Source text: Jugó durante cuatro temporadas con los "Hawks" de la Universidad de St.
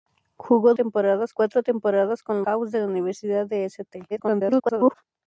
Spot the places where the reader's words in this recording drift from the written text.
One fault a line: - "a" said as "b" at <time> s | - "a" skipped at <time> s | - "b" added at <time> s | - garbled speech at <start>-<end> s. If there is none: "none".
- "durante" said as "temporadas" at 0.7 s
- "los" skipped at 2.4 s
- garbled speech at 4.1-4.9 s